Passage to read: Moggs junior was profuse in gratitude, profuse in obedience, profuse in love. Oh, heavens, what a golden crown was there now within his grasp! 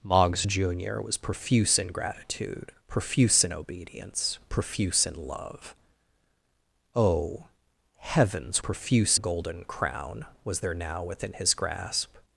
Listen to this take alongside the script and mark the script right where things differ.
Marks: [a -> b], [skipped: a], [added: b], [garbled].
Moggs junior was profuse in gratitude, profuse in obedience, profuse in love. Oh, heavens, [what -> profuse] a golden crown was there now within his grasp!